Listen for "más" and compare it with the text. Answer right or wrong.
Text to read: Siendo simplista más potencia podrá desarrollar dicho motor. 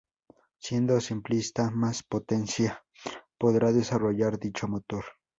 right